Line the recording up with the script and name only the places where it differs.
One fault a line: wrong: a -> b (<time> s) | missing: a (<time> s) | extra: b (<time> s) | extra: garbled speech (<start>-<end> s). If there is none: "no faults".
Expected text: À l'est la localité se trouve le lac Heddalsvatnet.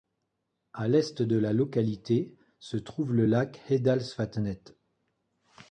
extra: de (1.2 s)